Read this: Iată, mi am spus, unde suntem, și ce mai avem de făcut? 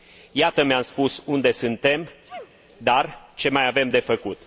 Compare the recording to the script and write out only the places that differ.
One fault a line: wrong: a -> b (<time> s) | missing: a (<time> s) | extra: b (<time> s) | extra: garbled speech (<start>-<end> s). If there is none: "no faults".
wrong: și -> dar (2.8 s)